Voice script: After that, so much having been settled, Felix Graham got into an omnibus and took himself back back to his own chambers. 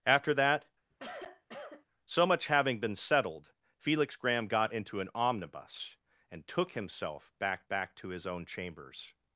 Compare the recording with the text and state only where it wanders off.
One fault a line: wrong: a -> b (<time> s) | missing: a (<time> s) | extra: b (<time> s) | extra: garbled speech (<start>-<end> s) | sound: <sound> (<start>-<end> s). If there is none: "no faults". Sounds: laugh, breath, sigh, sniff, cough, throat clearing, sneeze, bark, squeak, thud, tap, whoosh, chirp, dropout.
sound: cough (0.9-1.9 s)